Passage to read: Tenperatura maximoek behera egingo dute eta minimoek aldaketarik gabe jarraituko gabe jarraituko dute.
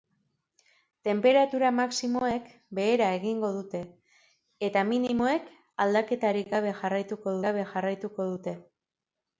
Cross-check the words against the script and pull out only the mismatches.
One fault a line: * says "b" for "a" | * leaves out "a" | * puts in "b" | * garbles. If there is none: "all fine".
all fine